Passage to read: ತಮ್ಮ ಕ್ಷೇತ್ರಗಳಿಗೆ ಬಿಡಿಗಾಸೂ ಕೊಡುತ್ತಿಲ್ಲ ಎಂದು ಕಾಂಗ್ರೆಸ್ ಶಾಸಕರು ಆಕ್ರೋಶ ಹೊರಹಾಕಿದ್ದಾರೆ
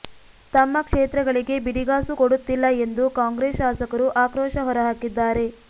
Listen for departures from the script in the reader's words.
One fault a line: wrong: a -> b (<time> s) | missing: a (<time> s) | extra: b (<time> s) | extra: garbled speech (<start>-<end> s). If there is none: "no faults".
no faults